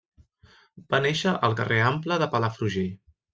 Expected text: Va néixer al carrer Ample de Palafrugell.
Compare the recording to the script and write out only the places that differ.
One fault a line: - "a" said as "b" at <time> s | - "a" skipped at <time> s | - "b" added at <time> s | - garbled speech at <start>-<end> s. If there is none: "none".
none